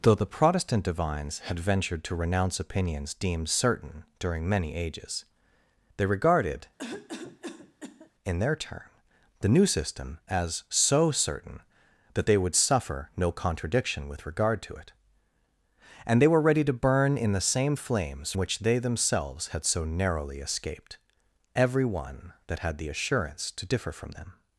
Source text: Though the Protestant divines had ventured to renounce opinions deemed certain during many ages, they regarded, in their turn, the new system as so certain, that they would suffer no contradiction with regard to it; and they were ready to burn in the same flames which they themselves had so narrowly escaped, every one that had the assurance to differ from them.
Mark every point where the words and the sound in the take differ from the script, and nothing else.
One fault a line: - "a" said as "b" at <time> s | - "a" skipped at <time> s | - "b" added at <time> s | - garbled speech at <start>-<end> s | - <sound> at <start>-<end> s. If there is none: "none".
- cough at 6.8-8.1 s